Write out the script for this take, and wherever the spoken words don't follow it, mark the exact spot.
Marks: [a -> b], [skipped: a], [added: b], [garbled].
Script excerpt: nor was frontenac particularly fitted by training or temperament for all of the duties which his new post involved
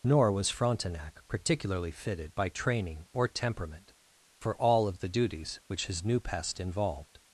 nor was frontenac particularly fitted by training or temperament for all of the duties which his new [post -> pest] involved